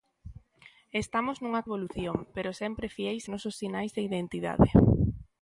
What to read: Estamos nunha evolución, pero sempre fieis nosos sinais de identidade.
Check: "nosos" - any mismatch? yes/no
no